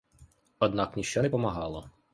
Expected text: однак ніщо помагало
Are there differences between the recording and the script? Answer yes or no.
yes